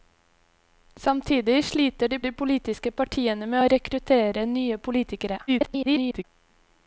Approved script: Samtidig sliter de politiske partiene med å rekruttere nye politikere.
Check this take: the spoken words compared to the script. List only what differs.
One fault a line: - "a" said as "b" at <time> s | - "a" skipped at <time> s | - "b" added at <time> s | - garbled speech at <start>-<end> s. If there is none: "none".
- "de" added at 2.2 s
- garbled speech at 5.5-6.2 s